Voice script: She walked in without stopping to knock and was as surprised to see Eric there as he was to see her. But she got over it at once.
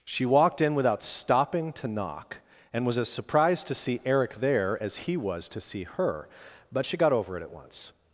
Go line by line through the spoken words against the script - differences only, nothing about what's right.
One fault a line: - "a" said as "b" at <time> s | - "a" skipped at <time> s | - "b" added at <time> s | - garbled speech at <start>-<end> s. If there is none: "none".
none